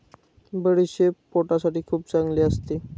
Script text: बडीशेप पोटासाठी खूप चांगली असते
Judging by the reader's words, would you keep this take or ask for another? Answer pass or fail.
pass